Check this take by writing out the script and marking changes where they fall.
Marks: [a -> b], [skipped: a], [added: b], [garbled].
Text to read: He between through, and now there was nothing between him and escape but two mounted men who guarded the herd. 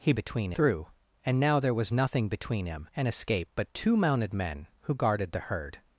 He between through, and now there was nothing between him and escape but two mounted men who guarded the herd.